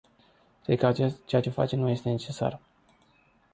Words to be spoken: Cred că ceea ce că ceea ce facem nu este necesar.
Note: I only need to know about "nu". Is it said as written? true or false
true